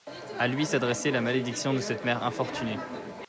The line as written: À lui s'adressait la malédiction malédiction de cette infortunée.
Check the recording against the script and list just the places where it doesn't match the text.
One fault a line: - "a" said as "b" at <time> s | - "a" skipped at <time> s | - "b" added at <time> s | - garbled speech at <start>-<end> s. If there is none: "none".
- "malédiction" skipped at 1.8 s
- "mère" added at 2.0 s